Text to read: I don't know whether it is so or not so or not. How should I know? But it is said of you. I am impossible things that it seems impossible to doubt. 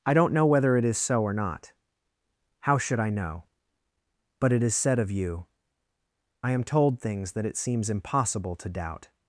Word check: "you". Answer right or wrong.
right